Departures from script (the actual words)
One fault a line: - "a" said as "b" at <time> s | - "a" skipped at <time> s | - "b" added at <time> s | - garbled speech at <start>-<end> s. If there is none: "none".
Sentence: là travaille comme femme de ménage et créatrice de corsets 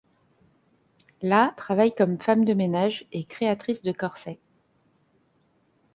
none